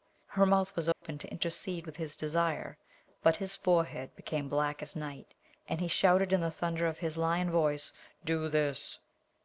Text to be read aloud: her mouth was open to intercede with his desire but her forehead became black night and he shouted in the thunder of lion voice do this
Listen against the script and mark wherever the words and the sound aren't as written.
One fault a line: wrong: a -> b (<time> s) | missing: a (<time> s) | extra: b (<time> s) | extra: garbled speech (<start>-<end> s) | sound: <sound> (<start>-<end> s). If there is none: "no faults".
sound: dropout (0.9-1.0 s)
wrong: her -> his (3.4 s)
extra: as (4.8 s)
extra: his (7.0 s)